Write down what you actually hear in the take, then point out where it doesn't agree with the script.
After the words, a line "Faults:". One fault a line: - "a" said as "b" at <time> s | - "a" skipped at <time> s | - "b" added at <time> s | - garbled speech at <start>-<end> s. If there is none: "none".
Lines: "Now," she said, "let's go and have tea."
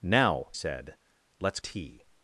"Now," said, "let's tea."
Faults:
- "she" skipped at 0.5 s
- "go and have" skipped at 1.6 s